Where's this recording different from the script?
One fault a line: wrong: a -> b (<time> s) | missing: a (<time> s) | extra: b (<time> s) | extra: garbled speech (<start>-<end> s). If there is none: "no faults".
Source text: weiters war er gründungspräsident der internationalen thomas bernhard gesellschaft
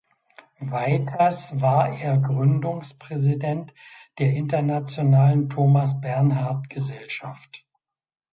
no faults